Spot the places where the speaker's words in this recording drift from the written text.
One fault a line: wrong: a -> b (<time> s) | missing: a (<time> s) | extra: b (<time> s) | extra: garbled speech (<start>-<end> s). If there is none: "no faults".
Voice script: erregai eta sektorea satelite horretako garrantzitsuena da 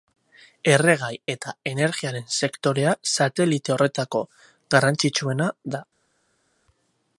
extra: energiaren (1.7 s)